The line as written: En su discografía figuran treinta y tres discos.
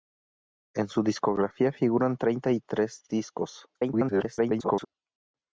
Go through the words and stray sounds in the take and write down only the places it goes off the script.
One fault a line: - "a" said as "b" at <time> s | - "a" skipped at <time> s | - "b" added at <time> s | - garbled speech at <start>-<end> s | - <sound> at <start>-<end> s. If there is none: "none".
- garbled speech at 3.7-4.9 s